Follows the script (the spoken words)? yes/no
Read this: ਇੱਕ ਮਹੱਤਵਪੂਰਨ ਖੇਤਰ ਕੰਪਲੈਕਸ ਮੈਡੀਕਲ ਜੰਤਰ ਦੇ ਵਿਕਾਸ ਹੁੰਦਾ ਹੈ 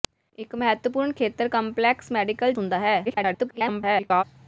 no